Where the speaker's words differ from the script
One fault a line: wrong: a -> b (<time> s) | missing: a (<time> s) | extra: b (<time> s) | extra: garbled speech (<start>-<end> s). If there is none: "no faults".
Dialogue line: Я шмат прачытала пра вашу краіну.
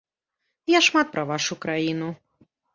missing: прачытала (1.1 s)